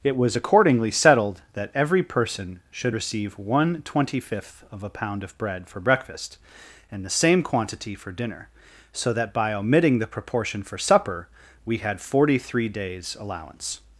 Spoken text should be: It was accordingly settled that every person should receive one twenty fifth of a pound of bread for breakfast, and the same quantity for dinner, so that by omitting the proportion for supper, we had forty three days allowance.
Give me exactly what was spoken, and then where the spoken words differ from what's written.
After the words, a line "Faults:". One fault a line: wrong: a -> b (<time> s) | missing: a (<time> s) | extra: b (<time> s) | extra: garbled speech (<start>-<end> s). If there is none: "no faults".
It was accordingly settled that every person should receive one twenty fifth of a pound of bread for breakfast, and the same quantity for dinner, so that by omitting the proportion for supper, we had forty three days allowance.
Faults:
no faults